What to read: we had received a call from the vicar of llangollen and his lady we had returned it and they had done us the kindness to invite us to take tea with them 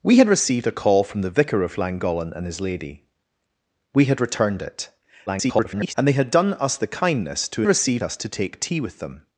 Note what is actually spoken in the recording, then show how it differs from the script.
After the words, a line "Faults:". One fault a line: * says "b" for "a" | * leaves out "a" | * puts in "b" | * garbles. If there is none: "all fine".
we had received a call from the vicar of llangollen and his lady we had returned it [garbled] and they had done us the kindness to received us to take tea with them
Faults:
* garbles
* says "received" for "invite"